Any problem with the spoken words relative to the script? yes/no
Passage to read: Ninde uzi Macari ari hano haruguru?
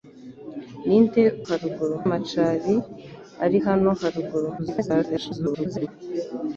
yes